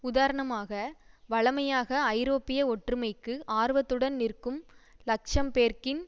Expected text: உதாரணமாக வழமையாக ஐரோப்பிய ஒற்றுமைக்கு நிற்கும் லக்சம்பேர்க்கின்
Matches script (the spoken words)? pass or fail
fail